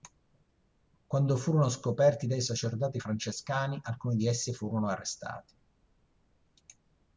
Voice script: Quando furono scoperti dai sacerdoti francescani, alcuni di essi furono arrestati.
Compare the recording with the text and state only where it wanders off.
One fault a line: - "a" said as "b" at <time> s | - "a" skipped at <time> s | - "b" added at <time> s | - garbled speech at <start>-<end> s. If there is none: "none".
none